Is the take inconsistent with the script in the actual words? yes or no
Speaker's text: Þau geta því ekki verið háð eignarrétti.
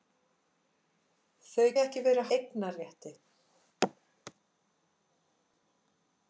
yes